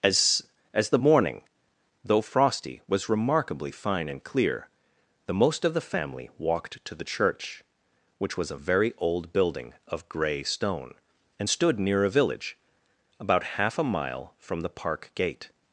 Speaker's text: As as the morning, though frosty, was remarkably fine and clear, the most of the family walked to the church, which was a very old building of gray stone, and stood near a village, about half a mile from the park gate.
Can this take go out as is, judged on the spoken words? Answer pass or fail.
pass